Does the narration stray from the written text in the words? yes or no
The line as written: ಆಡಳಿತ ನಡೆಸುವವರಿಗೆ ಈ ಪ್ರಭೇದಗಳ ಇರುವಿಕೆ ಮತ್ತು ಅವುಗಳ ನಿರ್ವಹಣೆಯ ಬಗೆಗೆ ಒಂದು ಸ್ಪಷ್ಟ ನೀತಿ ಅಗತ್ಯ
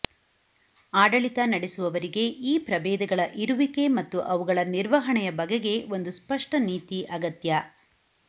no